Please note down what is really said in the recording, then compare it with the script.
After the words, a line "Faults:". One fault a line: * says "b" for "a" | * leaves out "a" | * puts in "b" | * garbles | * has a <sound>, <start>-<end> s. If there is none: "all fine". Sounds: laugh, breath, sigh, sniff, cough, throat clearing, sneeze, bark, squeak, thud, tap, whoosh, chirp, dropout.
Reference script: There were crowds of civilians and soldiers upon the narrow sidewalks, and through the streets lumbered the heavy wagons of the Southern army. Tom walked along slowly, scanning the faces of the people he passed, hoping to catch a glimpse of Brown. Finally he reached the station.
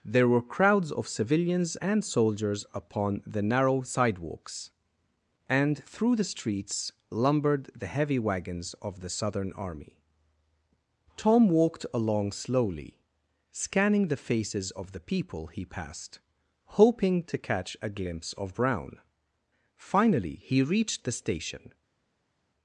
There were crowds of civilians and soldiers upon the narrow sidewalks, and through the streets lumbered the heavy wagons of the Southern army. Tom walked along slowly, scanning the faces of the people he passed, hoping to catch a glimpse of Brown. Finally he reached the station.
Faults:
all fine